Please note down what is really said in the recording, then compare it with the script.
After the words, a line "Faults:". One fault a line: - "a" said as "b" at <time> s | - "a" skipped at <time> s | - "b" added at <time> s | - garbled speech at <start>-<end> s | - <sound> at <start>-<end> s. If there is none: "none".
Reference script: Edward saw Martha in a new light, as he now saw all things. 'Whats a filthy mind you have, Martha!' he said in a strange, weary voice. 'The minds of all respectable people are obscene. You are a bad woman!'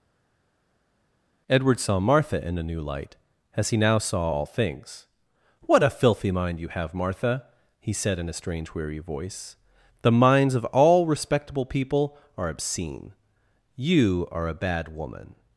Edward saw Martha in a new light, as he now saw all things. 'What a filthy mind you have, Martha!' he said in a strange, weary voice. 'The minds of all respectable people are obscene. You are a bad woman!'
Faults:
- "Whats" said as "What" at 5.6 s